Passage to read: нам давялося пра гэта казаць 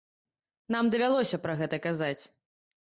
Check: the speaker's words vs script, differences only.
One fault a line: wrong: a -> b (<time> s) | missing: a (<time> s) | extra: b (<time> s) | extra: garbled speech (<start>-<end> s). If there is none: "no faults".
no faults